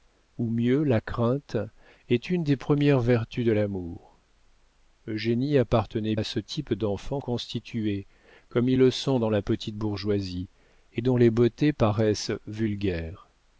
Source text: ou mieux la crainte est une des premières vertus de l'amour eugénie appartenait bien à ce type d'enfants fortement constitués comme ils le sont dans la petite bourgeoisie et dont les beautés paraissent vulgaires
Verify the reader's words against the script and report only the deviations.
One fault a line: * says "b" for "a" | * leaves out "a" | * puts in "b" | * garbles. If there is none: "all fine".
* leaves out "bien"
* leaves out "fortement"